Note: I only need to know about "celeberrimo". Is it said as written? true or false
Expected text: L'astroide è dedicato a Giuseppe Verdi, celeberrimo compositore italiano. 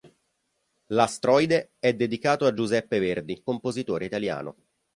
false